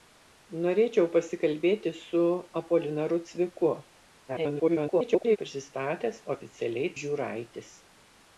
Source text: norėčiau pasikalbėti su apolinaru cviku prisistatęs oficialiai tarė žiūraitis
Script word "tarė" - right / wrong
wrong